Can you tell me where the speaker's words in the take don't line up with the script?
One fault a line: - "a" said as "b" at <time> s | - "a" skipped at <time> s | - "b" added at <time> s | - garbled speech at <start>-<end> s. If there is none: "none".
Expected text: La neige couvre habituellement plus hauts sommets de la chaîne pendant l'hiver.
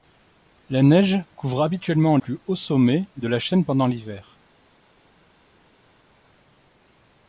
none